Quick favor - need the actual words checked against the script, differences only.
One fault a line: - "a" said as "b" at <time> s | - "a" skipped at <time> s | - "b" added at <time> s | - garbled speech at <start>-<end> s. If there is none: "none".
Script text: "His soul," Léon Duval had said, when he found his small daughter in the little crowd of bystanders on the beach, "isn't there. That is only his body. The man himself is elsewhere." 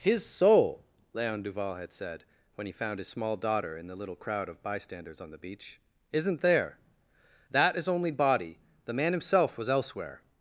- "his" skipped at 8.1 s
- "is" said as "was" at 9.6 s